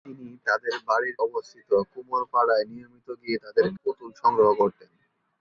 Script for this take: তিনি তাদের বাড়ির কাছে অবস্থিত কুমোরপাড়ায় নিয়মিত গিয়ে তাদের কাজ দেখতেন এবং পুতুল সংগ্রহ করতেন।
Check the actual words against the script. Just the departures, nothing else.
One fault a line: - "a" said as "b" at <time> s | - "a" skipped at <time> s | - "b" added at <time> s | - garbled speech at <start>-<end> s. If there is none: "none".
- "কাছে" skipped at 1.2 s
- "কাজ দেখতেন এবং" skipped at 3.7 s